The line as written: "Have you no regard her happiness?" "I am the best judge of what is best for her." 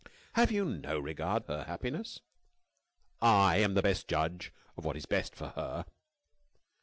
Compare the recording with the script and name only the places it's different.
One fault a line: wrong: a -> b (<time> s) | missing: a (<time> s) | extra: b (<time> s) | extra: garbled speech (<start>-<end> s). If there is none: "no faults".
no faults